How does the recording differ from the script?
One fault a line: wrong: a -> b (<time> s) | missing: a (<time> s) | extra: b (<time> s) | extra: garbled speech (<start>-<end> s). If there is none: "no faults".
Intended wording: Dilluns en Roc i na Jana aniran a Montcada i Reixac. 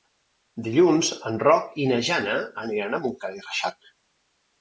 no faults